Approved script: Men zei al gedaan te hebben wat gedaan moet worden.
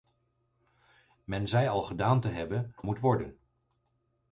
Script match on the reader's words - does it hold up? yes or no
no